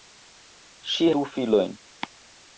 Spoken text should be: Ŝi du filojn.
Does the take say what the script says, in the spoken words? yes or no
yes